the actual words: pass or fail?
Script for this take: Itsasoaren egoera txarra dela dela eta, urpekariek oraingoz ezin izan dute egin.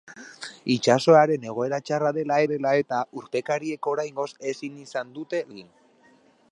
pass